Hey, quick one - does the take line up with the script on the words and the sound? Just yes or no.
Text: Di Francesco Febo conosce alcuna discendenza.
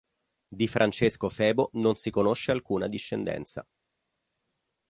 no